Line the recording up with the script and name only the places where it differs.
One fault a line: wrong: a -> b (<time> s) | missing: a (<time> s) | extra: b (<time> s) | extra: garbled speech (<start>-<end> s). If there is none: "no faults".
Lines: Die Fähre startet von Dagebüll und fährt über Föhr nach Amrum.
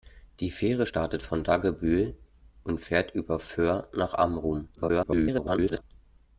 extra: garbled speech (4.8-5.8 s)